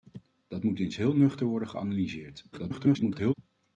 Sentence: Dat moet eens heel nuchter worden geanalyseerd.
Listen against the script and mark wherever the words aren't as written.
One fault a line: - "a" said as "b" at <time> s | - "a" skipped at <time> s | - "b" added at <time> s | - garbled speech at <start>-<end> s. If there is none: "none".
- garbled speech at 2.5-3.3 s